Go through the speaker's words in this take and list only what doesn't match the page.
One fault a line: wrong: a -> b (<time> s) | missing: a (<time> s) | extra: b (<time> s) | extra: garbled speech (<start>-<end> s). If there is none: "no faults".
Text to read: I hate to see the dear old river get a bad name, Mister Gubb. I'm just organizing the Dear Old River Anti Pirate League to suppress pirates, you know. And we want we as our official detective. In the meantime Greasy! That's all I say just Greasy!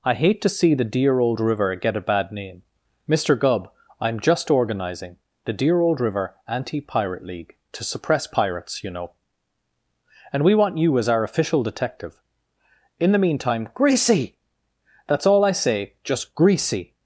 wrong: we -> you (10.8 s)